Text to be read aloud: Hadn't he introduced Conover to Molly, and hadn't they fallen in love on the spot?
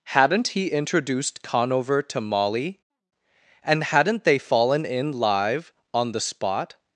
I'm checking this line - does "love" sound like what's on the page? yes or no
no